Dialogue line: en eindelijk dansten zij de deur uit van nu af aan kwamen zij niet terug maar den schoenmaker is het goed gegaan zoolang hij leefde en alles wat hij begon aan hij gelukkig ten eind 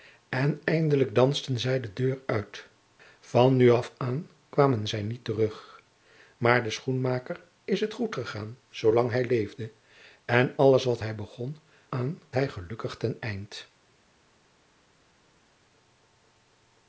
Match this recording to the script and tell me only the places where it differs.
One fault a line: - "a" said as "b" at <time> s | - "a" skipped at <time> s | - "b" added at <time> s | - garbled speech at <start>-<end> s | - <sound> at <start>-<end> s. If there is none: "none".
none